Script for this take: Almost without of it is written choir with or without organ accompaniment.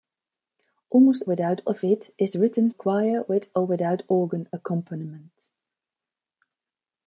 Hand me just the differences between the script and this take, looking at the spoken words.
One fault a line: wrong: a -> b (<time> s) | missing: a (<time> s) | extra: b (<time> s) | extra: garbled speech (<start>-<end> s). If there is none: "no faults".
no faults